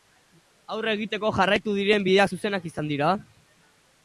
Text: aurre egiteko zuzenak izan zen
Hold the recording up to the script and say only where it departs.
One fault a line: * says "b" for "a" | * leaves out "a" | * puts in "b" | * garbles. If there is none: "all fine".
* puts in "jarraitu diren bideak"
* says "dira" for "zen"